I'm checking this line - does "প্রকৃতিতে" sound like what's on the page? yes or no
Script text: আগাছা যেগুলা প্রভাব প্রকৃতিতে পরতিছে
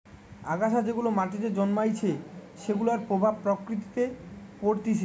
yes